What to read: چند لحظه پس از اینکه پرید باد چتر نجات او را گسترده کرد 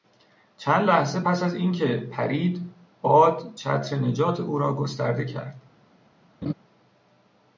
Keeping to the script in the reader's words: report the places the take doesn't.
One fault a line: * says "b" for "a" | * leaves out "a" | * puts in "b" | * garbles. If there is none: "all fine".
all fine